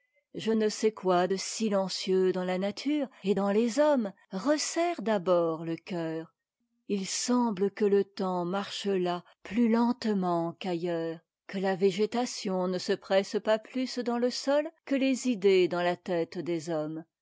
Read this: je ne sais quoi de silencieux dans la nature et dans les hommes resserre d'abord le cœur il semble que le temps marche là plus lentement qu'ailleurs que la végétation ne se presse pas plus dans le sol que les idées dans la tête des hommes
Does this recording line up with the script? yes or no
yes